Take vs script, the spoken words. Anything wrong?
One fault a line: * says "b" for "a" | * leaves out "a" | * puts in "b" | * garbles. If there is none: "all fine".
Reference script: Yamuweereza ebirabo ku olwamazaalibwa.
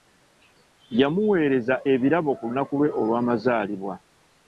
* puts in "lunaku lwe"